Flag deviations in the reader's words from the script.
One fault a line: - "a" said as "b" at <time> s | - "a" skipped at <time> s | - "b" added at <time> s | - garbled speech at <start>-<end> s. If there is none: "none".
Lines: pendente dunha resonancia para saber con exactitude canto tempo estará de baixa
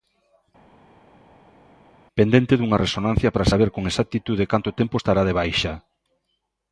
none